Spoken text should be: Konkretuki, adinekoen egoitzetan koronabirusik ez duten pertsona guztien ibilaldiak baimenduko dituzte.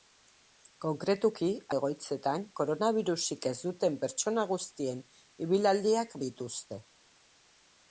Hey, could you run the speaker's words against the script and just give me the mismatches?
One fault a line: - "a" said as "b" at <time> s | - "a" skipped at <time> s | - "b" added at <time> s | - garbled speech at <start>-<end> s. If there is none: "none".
- "adinekoen" skipped at 1.5 s
- "baimenduko" skipped at 6.2 s